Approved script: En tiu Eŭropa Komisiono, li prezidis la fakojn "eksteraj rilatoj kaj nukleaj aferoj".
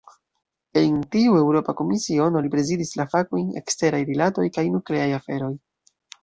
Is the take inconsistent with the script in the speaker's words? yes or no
no